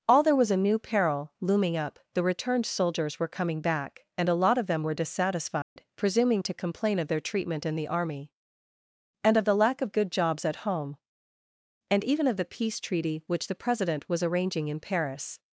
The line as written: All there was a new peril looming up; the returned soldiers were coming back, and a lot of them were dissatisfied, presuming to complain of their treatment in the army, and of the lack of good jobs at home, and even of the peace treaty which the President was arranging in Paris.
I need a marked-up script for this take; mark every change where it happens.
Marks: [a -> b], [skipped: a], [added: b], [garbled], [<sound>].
All there was a new peril looming up; the returned soldiers were coming back, and a lot of them were dissatisfied, [dropout] presuming to complain of their treatment in the army, and of the lack of good jobs at home, and even of the peace treaty which the President was arranging in Paris.